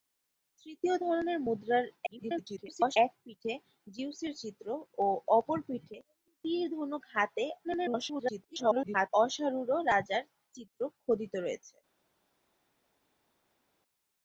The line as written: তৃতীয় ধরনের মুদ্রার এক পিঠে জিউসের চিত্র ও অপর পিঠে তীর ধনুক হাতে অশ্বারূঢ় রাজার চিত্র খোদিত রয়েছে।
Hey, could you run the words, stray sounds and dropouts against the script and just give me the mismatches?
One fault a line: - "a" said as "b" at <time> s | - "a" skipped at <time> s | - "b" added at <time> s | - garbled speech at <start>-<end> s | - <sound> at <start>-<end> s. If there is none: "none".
- garbled speech at 2.1-3.0 s
- garbled speech at 7.6-9.1 s